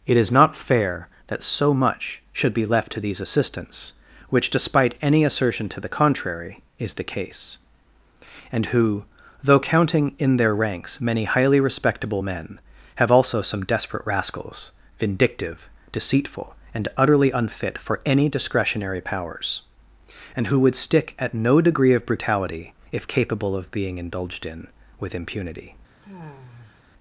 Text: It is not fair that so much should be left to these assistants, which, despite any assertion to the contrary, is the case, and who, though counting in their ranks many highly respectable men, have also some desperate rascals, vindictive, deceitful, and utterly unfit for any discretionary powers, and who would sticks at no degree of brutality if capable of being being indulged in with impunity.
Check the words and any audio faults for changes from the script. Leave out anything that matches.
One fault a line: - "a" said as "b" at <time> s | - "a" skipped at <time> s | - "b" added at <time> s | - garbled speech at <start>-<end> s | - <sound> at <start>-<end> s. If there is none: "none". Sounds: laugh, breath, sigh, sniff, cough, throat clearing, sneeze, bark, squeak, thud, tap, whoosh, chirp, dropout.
- "sticks" said as "stick" at 20.8 s
- "being" skipped at 24.0 s
- sigh at 26.0-26.8 s